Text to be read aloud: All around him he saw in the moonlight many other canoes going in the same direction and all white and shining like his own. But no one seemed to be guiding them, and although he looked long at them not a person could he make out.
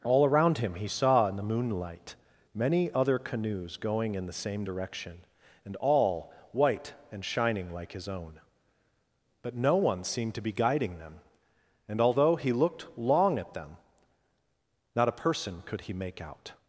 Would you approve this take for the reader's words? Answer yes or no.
yes